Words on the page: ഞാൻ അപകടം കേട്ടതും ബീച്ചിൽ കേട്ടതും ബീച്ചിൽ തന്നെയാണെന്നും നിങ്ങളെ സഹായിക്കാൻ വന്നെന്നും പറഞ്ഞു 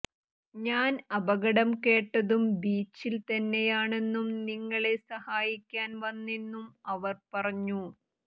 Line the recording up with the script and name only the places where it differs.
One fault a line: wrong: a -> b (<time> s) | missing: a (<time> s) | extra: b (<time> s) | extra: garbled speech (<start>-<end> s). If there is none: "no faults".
missing: കേട്ടതും ബീച്ചിൽ (3.1 s)
extra: അവർ (6.9 s)